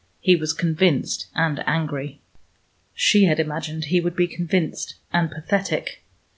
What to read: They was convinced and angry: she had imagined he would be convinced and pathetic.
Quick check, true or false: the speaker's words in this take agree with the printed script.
false